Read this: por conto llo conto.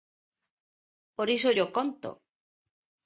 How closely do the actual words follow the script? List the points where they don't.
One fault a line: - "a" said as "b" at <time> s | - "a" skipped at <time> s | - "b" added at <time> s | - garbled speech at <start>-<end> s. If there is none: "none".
- "conto" said as "iso" at 1.4 s